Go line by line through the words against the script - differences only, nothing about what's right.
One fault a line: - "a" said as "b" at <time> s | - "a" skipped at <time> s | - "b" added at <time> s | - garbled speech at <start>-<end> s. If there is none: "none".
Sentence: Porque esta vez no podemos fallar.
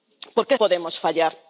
- "esta vez no" skipped at 0.6 s